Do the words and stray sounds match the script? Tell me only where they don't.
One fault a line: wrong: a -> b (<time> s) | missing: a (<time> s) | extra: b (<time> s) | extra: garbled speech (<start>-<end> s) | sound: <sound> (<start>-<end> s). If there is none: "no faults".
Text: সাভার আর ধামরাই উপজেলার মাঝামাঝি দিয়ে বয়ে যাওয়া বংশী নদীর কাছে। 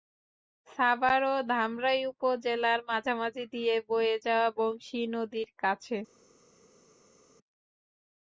wrong: আর -> ও (1.3 s)